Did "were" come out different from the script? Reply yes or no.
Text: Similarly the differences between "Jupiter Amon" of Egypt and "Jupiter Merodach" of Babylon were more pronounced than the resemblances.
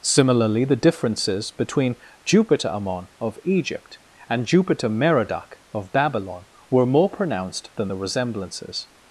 no